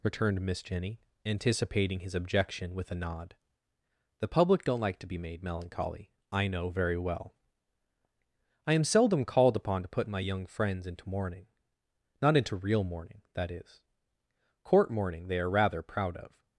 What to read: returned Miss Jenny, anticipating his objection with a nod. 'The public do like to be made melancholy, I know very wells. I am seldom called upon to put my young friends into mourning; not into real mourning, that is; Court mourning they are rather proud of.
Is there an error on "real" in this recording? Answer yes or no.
no